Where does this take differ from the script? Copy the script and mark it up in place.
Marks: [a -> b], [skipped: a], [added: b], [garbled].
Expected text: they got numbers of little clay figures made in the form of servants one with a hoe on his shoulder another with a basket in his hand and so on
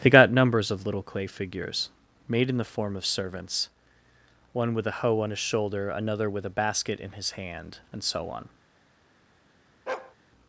they got numbers of little clay figures made in the form of servants one with a hoe on his shoulder another with a basket in his hand and so on